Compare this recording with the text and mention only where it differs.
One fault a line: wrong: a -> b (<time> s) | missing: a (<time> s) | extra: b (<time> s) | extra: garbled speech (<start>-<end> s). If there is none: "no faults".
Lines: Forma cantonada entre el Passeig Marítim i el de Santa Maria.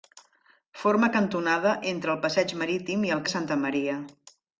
no faults